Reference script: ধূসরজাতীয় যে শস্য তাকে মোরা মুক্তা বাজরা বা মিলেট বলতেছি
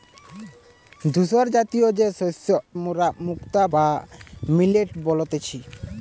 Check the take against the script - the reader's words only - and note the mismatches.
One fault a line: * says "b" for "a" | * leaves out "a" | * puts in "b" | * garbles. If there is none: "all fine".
* leaves out "তাকে"
* leaves out "বাজরা"